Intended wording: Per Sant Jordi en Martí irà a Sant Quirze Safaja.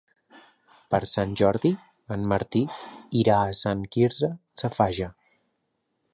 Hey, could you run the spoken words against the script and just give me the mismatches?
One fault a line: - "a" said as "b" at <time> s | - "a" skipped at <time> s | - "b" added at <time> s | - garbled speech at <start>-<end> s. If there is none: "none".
none